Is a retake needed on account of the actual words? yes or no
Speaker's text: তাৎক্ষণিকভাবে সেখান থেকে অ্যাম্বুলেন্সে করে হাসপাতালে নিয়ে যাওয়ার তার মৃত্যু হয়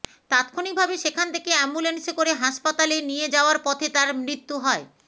yes